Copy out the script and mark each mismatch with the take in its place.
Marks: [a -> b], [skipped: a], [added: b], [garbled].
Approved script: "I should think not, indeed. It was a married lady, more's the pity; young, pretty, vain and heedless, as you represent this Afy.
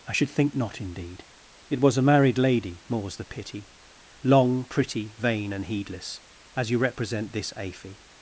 "I should think not, indeed. It was a married lady, more's the pity; [young, -> long] pretty, vain and heedless, as you represent this Afy.